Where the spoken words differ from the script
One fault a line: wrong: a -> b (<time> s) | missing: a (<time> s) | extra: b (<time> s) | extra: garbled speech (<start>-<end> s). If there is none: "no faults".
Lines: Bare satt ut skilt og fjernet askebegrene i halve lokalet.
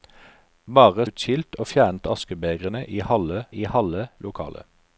missing: satt (1.1 s)
extra: i halve (3.5 s)